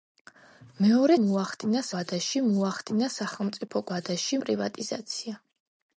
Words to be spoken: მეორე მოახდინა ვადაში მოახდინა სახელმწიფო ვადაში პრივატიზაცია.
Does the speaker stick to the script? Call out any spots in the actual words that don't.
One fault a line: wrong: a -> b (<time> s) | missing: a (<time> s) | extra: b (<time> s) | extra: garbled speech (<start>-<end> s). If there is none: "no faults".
no faults